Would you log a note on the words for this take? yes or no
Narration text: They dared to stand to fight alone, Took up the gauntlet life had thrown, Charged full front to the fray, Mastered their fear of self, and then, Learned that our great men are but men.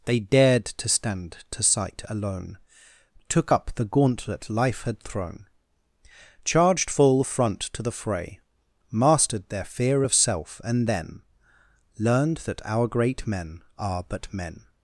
yes